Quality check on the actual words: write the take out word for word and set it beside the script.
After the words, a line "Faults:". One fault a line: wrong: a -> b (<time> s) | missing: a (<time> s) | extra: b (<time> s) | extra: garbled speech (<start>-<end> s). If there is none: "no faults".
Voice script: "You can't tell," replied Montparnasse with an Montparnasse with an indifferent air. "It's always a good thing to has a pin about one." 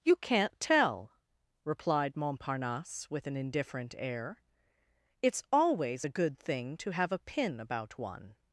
"You can't tell," replied Montparnasse with an indifferent air. "It's always a good thing to have a pin about one."
Faults:
missing: Montparnasse with an (3.4 s)
wrong: has -> have (6.9 s)